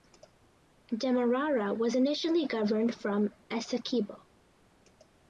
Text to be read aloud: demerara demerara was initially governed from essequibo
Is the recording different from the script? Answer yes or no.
yes